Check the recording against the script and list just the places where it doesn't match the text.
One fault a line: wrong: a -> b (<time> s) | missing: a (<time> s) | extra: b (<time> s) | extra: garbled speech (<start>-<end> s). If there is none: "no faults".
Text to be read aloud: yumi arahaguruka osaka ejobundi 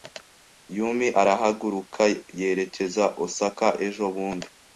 extra: yerekeza (2.4 s)